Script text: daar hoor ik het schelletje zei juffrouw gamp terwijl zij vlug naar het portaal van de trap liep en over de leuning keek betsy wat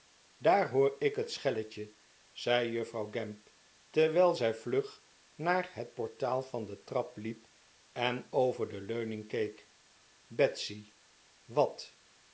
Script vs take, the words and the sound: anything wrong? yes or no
no